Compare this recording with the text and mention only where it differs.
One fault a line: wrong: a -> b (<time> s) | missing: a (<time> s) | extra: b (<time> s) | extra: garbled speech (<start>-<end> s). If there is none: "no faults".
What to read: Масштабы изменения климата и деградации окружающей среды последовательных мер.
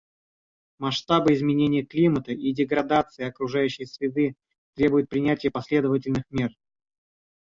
extra: требуют принятия (4.7 s)